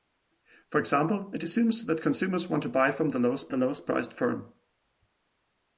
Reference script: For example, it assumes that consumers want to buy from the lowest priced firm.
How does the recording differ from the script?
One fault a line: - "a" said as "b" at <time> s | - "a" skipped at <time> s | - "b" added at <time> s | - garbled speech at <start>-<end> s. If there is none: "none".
- "the lowest" added at 3.5 s